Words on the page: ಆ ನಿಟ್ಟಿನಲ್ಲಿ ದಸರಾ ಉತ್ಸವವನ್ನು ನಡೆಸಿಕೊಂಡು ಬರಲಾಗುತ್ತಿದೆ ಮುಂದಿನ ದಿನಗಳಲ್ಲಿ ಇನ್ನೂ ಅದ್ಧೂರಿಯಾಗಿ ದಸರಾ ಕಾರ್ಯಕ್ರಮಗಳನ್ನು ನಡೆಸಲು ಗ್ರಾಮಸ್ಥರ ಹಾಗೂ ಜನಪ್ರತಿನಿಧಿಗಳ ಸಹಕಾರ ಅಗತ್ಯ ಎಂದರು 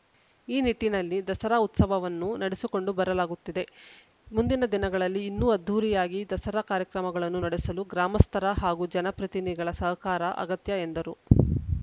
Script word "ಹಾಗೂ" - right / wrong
right